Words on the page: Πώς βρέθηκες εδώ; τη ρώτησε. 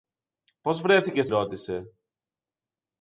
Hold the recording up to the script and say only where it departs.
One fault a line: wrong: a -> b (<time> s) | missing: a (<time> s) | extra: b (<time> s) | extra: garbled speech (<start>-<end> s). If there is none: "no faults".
missing: εδώ τη (1.3 s)